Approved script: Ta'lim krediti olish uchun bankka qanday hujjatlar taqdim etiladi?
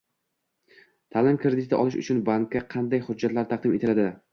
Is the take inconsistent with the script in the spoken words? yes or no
no